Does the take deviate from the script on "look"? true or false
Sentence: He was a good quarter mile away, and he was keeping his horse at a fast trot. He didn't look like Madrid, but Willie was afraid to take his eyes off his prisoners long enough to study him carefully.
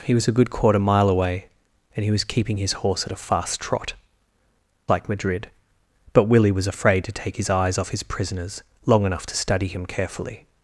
true